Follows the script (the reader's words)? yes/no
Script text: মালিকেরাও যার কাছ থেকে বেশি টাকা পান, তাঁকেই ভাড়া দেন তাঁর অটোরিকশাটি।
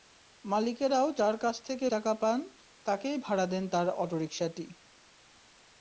no